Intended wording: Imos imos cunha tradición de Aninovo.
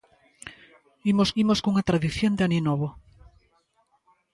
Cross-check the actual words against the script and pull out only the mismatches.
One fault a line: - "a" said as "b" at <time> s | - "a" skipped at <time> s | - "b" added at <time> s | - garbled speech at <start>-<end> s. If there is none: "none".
none